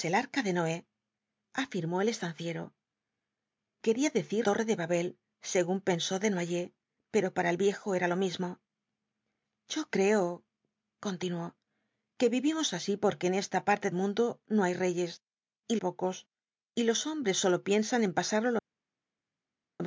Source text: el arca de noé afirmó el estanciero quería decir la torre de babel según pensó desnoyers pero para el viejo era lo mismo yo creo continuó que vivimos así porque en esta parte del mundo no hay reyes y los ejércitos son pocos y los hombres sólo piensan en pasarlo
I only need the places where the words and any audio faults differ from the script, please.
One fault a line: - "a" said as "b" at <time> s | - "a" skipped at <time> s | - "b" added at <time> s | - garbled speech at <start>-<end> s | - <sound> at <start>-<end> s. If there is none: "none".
- "la" skipped at 4.5 s
- "del" skipped at 13.9 s
- "los ejércitos son" skipped at 15.8 s